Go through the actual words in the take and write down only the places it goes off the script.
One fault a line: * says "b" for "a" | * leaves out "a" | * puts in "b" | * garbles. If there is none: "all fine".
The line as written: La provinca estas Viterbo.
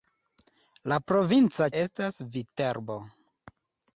all fine